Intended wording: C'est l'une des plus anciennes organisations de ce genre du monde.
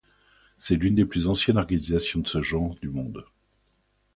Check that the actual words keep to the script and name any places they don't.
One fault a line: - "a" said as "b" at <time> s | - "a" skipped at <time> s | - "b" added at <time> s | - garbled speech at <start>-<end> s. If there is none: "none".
none